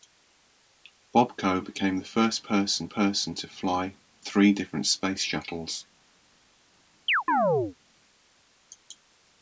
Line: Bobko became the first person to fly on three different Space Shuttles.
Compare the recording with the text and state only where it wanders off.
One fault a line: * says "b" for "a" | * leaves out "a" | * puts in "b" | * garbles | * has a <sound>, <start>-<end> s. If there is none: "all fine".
* puts in "person"
* leaves out "on"
* has a chirp, 7.1-7.8 s